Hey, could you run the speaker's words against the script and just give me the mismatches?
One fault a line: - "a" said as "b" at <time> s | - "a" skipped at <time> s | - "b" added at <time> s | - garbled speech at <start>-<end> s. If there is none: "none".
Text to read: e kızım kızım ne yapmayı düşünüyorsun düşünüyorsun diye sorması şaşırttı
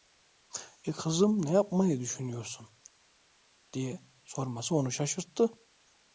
- "kızım" skipped at 1.4 s
- "düşünüyorsun" skipped at 2.7 s
- "onu" added at 4.8 s